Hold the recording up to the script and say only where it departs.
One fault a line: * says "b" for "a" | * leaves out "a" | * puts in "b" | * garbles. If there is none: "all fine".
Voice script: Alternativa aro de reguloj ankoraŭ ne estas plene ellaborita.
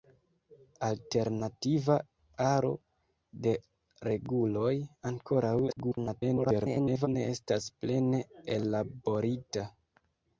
* garbles